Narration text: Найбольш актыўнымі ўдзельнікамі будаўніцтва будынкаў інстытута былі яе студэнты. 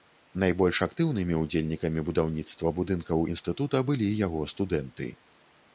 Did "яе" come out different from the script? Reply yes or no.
yes